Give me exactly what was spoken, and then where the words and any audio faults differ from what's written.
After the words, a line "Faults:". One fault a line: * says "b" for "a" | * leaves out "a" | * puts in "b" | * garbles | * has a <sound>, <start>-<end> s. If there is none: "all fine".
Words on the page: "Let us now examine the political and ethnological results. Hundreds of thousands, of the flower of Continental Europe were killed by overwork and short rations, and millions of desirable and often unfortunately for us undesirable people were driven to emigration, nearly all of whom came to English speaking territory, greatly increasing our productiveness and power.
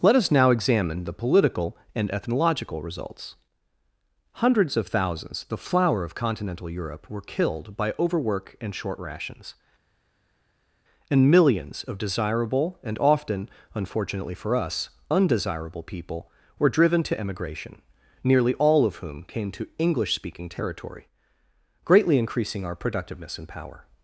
"Let us now examine the political and ethnological results. Hundreds of thousands, the flower of Continental Europe were killed by overwork and short rations, and millions of desirable and often unfortunately for us undesirable people were driven to emigration, nearly all of whom came to English speaking territory, greatly increasing our productiveness and power.
Faults:
* leaves out "of"